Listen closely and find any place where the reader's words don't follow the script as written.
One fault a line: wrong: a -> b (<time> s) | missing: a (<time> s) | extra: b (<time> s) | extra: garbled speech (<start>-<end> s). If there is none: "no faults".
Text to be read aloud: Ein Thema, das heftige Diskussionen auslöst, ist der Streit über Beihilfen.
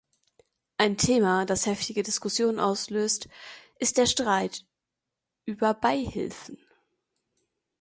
no faults